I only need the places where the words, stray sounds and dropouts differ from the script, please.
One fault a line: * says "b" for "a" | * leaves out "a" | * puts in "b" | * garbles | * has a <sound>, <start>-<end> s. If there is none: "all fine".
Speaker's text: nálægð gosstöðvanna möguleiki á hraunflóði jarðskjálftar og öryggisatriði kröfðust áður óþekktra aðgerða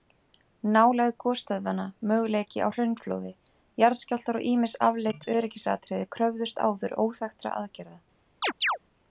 * puts in "ýmis afleidd"
* has a chirp, 8.4-8.8 s